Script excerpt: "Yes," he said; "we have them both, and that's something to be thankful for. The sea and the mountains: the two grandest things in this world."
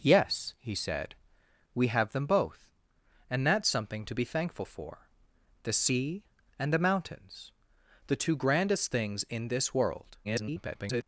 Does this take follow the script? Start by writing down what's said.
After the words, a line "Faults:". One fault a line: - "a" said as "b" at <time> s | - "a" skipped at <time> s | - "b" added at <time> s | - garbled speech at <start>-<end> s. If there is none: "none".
"Yes," he said; "we have them both, and that's something to be thankful for. The sea and the mountains: the two grandest things in this world." [garbled]
Faults:
- garbled speech at 10.2-11.0 s